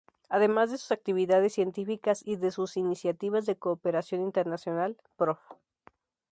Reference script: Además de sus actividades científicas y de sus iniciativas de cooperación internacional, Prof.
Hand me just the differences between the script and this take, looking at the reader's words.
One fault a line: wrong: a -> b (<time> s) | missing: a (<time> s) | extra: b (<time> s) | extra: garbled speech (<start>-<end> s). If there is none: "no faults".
no faults